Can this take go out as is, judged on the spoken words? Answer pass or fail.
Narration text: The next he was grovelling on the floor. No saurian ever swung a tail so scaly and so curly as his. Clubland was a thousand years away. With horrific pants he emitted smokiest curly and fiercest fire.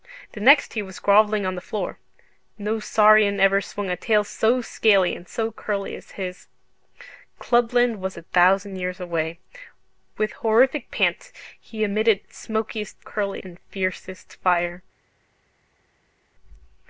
pass